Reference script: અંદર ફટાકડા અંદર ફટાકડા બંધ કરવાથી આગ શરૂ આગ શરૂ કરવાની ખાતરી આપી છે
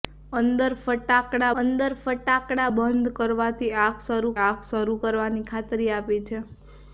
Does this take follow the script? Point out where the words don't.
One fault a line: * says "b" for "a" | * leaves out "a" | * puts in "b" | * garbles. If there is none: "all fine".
all fine